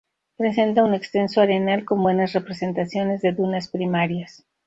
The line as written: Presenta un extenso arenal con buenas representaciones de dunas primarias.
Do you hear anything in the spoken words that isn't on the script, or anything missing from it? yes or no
no